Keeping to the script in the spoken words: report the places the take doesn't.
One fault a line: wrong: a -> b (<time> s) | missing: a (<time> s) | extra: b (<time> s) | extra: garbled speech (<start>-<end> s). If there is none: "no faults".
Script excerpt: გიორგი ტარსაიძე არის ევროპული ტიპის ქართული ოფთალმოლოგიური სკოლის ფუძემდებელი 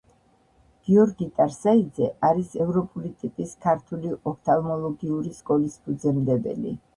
no faults